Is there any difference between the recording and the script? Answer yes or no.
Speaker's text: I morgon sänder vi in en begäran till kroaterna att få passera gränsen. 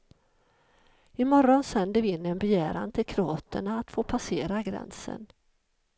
no